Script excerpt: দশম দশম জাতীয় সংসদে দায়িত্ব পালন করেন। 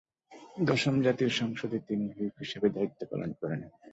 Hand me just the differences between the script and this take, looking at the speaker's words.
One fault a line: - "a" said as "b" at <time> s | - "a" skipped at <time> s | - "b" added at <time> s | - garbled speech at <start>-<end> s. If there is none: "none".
- "দশম" skipped at 0.9 s
- "তিনি হুইপ হিসেবে" added at 1.8 s